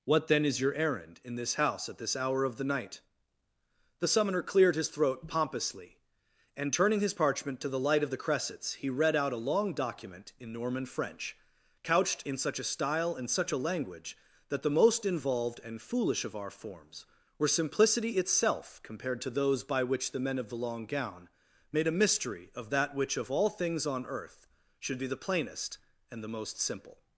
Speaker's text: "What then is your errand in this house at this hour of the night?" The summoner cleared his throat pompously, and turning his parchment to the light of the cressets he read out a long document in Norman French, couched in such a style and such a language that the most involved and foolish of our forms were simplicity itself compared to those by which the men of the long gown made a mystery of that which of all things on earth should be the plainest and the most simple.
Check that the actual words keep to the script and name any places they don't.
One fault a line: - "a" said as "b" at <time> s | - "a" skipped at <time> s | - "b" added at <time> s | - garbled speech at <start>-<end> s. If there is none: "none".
none